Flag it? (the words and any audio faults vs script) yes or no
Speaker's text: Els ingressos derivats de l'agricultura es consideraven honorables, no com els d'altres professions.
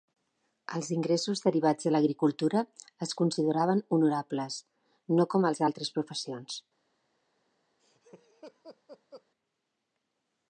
yes